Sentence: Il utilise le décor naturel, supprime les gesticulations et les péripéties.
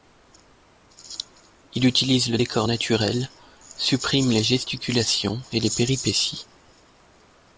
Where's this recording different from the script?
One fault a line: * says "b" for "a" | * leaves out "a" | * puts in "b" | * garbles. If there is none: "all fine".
all fine